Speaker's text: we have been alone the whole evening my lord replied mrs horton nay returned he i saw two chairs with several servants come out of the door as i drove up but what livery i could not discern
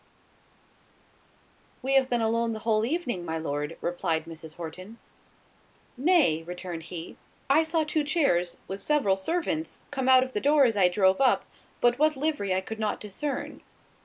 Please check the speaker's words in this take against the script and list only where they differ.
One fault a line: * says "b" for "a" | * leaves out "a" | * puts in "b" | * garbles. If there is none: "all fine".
all fine